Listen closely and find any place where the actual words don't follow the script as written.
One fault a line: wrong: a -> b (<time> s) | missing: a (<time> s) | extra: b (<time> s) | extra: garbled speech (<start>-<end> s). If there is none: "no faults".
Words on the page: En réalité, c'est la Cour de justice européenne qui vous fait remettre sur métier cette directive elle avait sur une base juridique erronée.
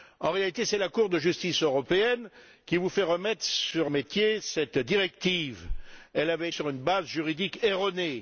no faults